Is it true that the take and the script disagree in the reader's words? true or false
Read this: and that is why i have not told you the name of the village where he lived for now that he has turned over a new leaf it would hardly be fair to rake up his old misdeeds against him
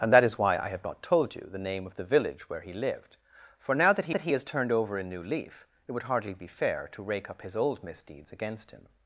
true